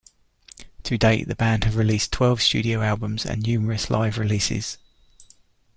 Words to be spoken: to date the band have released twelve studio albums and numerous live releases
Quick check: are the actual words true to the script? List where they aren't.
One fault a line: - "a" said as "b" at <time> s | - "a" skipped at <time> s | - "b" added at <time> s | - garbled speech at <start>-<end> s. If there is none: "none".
none